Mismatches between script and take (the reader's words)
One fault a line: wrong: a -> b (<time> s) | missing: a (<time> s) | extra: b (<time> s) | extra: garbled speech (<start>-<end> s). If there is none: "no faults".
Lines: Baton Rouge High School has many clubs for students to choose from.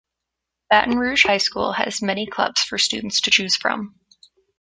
no faults